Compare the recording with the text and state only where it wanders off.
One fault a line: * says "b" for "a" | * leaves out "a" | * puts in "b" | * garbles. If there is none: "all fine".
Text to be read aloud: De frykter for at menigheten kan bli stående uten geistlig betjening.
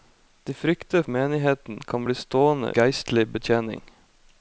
* leaves out "for at"
* leaves out "uten"